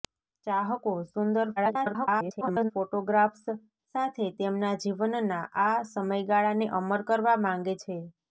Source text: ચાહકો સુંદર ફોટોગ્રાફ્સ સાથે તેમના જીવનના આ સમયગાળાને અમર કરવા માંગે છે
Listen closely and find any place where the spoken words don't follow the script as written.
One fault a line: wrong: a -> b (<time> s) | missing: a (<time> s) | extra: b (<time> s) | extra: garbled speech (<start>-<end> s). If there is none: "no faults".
extra: garbled speech (1.6-2.7 s)